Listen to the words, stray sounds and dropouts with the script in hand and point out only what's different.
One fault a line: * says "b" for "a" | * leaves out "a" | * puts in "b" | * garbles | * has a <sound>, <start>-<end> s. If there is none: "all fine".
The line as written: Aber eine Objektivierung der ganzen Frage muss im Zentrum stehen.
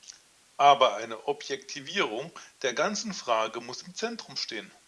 all fine